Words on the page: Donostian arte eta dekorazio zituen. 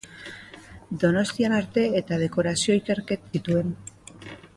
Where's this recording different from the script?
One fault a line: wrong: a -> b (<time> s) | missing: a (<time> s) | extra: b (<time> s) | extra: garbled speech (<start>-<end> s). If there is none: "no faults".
no faults